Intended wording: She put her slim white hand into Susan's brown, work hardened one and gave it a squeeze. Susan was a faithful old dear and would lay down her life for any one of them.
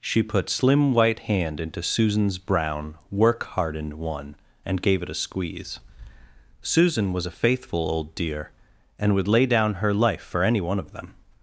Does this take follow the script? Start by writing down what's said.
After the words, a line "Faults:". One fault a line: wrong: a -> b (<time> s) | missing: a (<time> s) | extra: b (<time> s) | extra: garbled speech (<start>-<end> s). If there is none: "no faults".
She put slim white hand into Susan's brown, work hardened one and gave it a squeeze. Susan was a faithful old dear and would lay down her life for any one of them.
Faults:
missing: her (0.5 s)